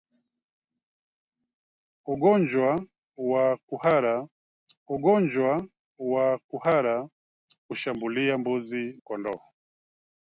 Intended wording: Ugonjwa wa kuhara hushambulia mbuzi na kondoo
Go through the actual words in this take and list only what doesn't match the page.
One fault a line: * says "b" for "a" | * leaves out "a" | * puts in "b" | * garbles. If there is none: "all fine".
* puts in "ugonjwa wa kuhara"
* leaves out "na"